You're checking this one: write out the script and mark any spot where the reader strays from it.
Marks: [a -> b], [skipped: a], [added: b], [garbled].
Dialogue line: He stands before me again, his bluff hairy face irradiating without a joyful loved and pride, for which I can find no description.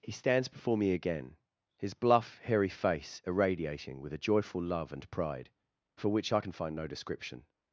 He stands before me again, his bluff hairy face irradiating [without -> with] a joyful [loved -> love] and pride, for which I can find no description.